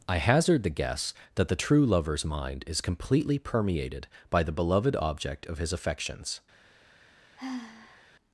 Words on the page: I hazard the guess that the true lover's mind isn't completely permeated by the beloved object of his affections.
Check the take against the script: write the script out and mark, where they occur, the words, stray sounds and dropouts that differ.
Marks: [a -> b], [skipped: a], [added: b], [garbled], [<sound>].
I hazard the guess that the true lover's mind [isn't -> is] completely permeated by the beloved object of his affections. [sigh]